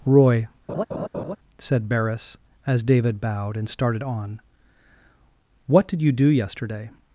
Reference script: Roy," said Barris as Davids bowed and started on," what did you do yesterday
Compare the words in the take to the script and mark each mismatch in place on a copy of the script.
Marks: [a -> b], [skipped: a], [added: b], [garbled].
Roy," said Barris as [Davids -> David] bowed and started on," what did you do yesterday